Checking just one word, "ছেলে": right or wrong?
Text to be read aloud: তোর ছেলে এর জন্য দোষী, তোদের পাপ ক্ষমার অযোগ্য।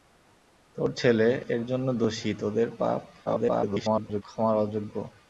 right